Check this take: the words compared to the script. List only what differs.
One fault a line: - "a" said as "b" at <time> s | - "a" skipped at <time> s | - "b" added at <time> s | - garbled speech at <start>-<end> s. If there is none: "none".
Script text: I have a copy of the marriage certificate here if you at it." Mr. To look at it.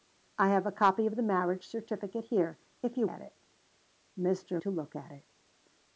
none